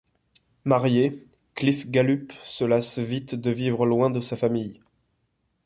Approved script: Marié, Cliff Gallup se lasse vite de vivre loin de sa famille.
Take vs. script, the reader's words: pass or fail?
pass